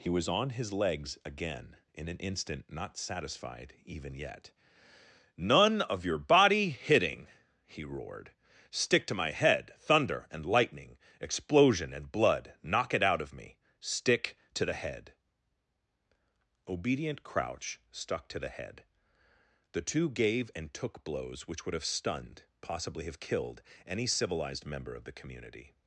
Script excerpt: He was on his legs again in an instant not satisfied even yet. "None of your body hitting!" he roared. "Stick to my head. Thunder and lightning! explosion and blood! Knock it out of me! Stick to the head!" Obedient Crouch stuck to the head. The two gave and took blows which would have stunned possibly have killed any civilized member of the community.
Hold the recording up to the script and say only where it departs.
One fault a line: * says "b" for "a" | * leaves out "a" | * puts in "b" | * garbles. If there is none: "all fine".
all fine